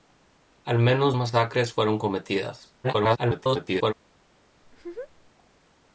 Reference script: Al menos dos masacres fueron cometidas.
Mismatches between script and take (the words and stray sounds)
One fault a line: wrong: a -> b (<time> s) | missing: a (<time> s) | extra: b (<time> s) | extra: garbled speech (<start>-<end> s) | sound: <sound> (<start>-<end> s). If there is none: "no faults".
missing: dos (1.1 s)
extra: garbled speech (2.8-3.9 s)
sound: laugh (4.6-5.3 s)